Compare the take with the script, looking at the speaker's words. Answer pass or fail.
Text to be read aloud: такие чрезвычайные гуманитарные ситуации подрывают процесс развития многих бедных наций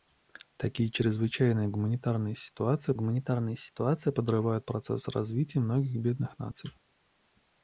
fail